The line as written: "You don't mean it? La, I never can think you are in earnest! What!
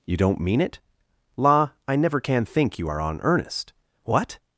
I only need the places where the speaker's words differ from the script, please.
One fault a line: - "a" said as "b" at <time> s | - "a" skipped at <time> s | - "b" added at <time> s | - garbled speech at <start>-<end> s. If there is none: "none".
- "in" said as "on" at 3.0 s